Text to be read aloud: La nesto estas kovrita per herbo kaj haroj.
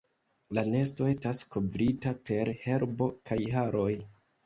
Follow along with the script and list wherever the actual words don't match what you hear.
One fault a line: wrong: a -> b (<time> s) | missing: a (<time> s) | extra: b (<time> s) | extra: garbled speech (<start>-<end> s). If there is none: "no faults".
no faults